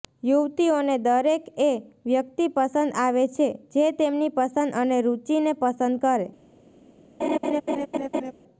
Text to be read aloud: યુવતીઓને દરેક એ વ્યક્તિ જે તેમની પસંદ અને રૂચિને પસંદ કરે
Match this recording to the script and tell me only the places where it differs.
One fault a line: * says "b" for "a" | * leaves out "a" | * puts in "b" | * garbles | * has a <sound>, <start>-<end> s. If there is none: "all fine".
* puts in "પસંદ આવે છે"
* has a laugh, 7.2-8.3 s